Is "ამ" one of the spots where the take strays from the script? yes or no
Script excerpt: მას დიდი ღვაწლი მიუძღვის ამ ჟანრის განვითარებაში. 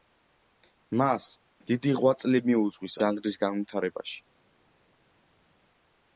yes